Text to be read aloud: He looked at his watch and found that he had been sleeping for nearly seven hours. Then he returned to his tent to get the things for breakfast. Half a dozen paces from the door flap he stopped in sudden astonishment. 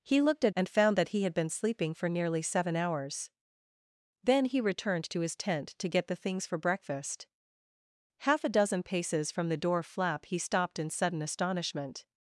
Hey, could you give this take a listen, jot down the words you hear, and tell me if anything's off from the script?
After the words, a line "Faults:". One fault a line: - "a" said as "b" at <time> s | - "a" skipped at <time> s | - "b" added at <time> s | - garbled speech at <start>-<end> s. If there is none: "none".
He looked at and found that he had been sleeping for nearly seven hours. Then he returned to his tent to get the things for breakfast. Half a dozen paces from the door flap he stopped in sudden astonishment.
Faults:
- "his watch" skipped at 0.6 s